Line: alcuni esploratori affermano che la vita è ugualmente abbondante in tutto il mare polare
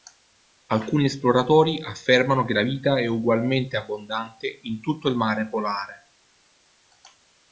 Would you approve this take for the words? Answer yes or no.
yes